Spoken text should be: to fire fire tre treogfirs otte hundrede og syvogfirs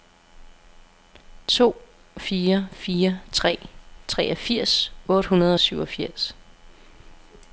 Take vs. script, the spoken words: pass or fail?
pass